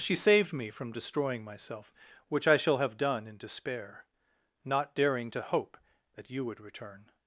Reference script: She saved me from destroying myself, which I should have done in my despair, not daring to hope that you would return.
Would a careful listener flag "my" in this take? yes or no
yes